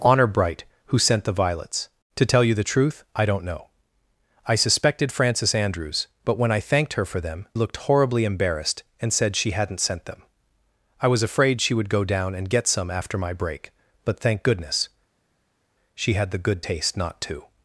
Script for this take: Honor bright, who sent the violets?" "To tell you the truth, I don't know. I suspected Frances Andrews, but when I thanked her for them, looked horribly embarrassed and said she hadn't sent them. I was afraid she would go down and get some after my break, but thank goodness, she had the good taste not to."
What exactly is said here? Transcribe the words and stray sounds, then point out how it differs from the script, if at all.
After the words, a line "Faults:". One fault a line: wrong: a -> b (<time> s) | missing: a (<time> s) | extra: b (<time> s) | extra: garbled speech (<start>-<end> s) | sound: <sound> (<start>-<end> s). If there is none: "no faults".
Honor bright, who sent the violets?" "To tell you the truth, I don't know. I suspected Frances Andrews, but when I thanked her for them, looked horribly embarrassed and said she hadn't sent them. I was afraid she would go down and get some after my break, but thank goodness, she had the good taste not to."
Faults:
no faults